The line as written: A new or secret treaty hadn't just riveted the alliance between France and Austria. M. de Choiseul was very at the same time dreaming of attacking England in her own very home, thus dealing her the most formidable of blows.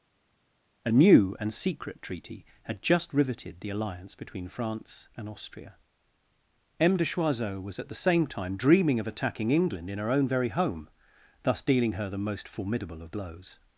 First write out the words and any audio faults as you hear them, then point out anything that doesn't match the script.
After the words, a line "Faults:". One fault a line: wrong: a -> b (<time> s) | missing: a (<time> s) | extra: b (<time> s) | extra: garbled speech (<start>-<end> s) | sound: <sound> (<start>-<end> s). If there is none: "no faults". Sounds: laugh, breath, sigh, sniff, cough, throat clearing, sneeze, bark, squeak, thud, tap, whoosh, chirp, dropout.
A new and secret treaty had just riveted the alliance between France and Austria. M. de Choiseul was at the same time dreaming of attacking England in her own very home, thus dealing her the most formidable of blows.
Faults:
wrong: or -> and (1.4 s)
wrong: hadn't -> had (2.6 s)
missing: very (7.8 s)